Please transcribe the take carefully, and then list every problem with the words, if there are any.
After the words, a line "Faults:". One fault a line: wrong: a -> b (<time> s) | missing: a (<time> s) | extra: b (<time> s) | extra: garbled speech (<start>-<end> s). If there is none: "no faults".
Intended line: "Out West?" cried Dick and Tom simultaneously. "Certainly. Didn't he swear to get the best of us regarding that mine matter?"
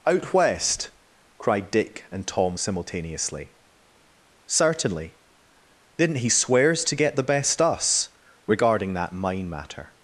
"Out West?" cried Dick and Tom simultaneously. "Certainly. Didn't he swears to get the best us regarding that mine matter?"
Faults:
wrong: swear -> swears (6.3 s)
missing: of (7.6 s)